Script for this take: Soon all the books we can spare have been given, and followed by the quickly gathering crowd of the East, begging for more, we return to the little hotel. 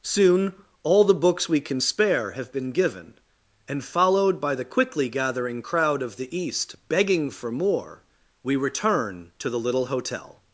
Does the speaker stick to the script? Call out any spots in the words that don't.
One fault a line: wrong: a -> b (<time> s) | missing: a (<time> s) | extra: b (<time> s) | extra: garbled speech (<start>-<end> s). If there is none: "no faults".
no faults